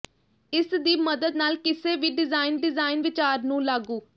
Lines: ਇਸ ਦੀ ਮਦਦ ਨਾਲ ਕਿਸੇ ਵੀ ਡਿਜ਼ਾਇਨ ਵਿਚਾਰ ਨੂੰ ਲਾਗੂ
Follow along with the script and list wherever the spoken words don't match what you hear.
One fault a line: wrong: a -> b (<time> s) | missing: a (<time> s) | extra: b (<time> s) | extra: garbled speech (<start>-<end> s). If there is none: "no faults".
extra: ਡਿਜ਼ਾਇਨ (2.6 s)